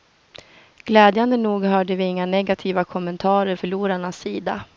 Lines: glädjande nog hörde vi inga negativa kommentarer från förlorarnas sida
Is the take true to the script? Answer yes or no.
no